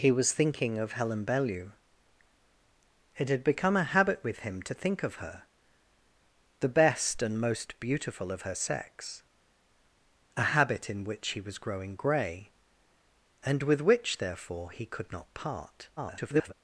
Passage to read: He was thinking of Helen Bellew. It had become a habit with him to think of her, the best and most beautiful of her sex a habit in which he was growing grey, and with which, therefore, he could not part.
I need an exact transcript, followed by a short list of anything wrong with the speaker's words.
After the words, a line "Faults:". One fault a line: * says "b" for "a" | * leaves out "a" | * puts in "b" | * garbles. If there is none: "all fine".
He was thinking of Helen Bellew. It had become a habit with him to think of her, the best and most beautiful of her sex a habit in which he was growing grey, and with which, therefore, he could not part. [garbled]
Faults:
* garbles